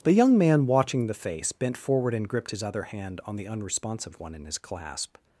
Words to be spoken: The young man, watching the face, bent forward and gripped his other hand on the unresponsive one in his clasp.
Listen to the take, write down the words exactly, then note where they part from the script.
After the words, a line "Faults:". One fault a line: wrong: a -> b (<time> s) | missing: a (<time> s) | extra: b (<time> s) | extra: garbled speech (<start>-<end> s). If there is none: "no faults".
The young man, watching the face, bent forward and gripped his other hand on the unresponsive one in his clasp.
Faults:
no faults